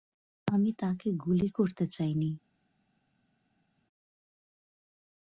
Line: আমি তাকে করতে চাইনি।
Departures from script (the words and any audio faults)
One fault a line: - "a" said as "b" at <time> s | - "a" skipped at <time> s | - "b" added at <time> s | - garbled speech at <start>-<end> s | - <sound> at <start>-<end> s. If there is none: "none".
- "গুলি" added at 1.2 s